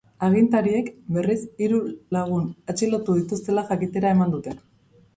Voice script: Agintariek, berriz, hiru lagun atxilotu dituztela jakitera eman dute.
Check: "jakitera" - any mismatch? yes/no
no